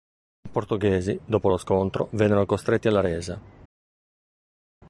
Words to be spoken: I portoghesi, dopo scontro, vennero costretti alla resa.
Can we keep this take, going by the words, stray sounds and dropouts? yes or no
no